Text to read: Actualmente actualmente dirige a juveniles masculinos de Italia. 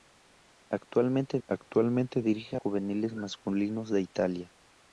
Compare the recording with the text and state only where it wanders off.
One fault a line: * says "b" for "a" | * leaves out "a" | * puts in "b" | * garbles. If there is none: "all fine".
all fine